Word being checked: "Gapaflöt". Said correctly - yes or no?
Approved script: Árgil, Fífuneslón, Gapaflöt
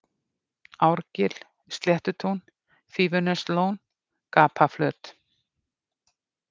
yes